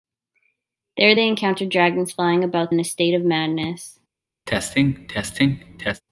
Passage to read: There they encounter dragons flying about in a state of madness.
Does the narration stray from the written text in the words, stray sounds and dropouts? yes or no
yes